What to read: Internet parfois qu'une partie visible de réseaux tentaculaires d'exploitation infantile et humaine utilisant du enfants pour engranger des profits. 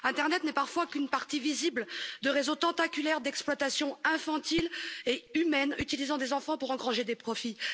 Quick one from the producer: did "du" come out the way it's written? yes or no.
no